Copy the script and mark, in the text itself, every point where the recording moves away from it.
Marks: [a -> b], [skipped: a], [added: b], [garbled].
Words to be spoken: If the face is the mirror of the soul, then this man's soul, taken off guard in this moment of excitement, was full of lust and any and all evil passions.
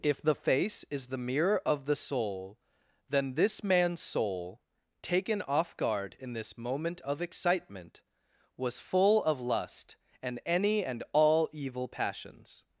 If the face is the mirror of the soul, then this man's soul, taken off guard in this moment of excitement, was full of lust and any and all evil passions.